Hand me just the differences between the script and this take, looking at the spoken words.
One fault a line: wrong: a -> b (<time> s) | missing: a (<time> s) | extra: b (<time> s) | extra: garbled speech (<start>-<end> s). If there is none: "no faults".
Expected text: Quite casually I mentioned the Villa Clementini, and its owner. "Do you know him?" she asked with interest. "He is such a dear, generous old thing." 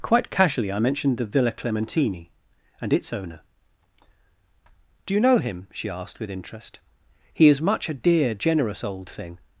wrong: such -> much (7.6 s)